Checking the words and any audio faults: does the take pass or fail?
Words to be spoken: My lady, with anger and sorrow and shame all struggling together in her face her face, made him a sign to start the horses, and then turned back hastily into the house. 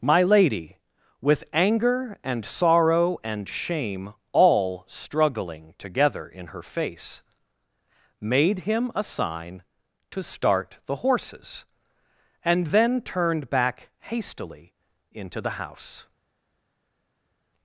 fail